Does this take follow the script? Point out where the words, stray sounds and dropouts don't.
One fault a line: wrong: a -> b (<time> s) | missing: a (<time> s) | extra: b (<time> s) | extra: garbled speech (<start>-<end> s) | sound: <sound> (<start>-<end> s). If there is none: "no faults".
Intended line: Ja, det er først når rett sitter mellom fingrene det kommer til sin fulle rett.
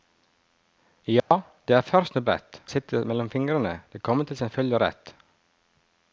sound: dropout (1.2-1.3 s)